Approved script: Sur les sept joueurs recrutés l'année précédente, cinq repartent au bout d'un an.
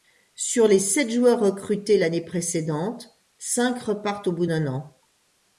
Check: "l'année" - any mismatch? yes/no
no